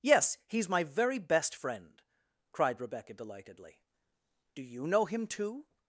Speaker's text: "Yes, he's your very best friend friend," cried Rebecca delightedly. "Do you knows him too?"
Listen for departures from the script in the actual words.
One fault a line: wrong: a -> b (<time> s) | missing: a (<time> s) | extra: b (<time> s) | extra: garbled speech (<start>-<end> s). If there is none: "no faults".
wrong: your -> my (0.7 s)
missing: friend (2.0 s)
wrong: knows -> know (4.9 s)